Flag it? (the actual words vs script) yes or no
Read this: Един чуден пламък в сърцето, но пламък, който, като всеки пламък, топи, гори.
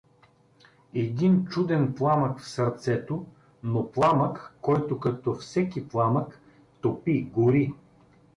no